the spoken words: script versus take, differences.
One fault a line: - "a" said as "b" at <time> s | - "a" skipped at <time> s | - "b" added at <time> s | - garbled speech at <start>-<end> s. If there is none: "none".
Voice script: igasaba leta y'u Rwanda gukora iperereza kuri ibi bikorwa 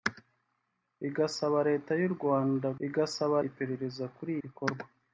- "gukora" said as "igasaba" at 2.9 s
- "ibi" skipped at 4.3 s